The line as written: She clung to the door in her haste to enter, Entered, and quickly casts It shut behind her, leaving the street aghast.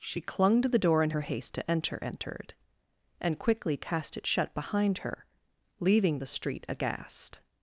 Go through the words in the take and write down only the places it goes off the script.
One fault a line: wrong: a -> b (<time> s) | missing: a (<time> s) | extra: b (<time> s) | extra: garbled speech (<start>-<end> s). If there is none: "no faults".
wrong: casts -> cast (3.8 s)